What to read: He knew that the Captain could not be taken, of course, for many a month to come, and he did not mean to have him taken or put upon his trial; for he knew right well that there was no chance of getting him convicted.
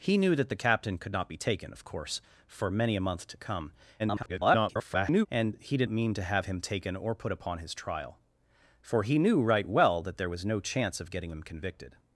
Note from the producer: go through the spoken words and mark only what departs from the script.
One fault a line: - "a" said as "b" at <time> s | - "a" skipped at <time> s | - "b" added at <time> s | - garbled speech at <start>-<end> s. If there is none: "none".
- garbled speech at 4.0-5.3 s
- "not" skipped at 5.9 s